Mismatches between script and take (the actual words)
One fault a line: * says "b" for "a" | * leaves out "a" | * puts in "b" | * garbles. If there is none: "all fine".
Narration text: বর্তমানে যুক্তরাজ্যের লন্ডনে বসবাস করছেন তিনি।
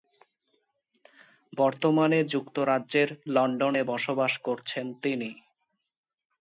all fine